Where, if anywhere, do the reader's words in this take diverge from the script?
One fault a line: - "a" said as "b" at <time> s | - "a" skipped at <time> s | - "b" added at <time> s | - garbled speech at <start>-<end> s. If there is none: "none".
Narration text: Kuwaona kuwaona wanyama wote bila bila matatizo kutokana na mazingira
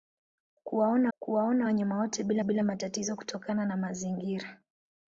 none